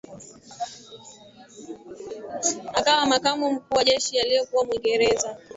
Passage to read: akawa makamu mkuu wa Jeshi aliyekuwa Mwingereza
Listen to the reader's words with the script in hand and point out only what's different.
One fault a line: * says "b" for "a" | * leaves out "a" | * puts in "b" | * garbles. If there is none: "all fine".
all fine